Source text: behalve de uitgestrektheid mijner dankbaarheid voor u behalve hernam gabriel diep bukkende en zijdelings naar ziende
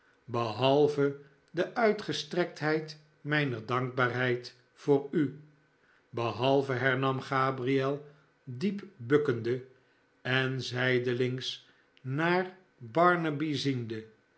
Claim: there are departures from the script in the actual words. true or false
true